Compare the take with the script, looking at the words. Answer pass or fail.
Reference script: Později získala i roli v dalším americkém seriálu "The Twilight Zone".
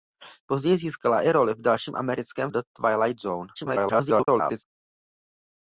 fail